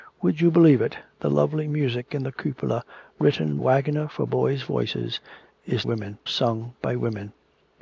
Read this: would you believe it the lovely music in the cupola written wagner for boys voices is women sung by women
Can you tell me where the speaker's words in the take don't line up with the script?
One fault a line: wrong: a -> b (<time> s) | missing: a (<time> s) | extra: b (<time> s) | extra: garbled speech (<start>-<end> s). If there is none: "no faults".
no faults